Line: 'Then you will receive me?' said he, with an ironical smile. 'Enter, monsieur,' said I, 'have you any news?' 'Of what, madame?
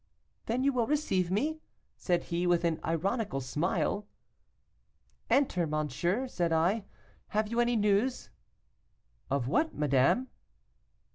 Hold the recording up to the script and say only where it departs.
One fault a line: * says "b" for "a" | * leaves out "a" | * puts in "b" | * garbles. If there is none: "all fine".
all fine